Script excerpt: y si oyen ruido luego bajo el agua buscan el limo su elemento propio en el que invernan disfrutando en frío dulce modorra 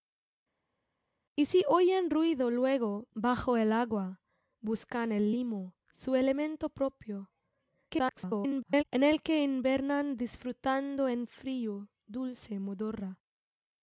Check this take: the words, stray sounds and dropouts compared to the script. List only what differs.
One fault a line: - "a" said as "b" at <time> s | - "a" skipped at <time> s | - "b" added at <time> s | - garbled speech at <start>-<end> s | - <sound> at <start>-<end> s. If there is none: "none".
- garbled speech at 7.9-8.8 s